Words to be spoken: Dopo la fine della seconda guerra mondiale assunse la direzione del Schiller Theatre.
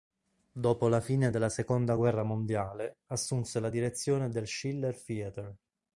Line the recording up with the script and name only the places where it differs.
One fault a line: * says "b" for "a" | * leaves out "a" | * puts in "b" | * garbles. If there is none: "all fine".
all fine